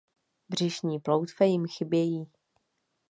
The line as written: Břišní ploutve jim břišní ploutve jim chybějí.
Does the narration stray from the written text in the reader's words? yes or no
yes